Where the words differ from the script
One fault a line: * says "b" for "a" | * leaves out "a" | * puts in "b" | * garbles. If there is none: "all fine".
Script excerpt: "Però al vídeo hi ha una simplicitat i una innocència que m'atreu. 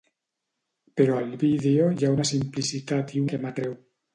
* leaves out "una innocència"